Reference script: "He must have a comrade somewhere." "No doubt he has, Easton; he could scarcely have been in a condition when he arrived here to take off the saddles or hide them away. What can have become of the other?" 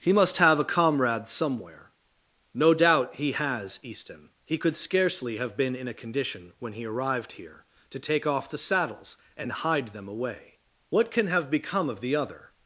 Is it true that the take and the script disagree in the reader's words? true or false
true